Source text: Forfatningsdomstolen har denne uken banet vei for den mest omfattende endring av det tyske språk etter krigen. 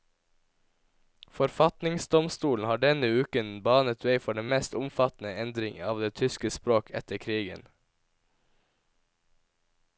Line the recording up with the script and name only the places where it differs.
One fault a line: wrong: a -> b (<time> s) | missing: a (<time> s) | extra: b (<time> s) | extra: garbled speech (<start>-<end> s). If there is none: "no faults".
no faults